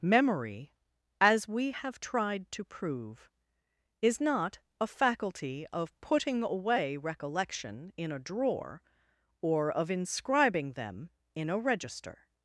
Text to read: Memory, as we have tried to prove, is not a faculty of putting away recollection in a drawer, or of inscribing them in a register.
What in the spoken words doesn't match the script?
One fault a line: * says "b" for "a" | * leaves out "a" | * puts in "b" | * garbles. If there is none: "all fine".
all fine